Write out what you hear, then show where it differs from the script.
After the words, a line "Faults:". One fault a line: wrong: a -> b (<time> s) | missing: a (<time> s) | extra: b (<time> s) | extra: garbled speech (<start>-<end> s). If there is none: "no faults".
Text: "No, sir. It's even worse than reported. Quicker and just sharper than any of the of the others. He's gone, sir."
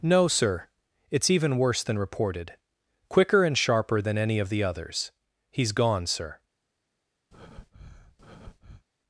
"No, sir. It's even worse than reported. Quicker and sharper than any of the others. He's gone, sir."
Faults:
missing: just (3.6 s)
missing: of the (4.6 s)